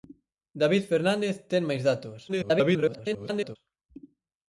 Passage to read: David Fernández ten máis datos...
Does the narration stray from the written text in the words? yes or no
yes